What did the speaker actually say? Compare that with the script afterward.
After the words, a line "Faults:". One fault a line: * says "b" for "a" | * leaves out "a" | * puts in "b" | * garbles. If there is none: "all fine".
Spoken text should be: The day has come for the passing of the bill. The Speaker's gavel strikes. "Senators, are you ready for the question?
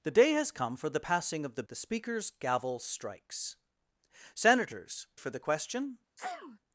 The day has come for the passing of the. The Speaker's gavel strikes. "Senators, for the question?
Faults:
* leaves out "bill"
* leaves out "are you ready"